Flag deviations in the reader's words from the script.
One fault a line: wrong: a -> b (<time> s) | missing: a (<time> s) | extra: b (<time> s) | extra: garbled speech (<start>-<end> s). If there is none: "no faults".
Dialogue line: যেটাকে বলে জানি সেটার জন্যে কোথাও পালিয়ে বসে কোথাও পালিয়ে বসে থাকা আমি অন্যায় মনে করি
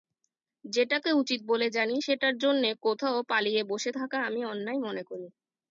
extra: উচিত (1.1 s)
missing: কোথাও পালিয়ে বসে (3.9 s)